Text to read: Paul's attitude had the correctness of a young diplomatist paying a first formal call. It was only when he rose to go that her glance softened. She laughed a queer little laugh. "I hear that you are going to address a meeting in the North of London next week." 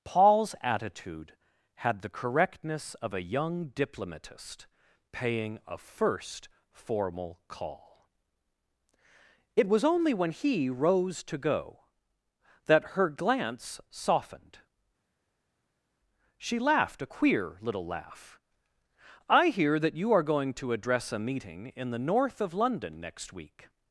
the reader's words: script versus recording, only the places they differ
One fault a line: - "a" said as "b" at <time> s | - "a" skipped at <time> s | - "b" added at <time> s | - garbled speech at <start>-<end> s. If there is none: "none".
none